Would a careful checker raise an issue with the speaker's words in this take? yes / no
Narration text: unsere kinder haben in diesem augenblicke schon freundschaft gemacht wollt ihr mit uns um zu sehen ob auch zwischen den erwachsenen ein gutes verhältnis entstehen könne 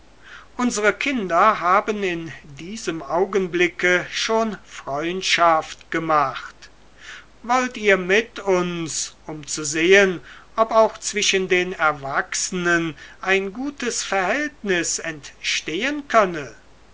no